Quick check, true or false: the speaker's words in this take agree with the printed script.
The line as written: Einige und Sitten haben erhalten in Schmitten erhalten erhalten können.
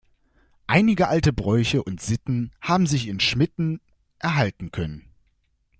false